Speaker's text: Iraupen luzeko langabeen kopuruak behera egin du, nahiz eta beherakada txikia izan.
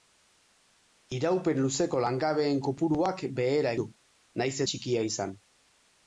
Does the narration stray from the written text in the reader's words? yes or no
yes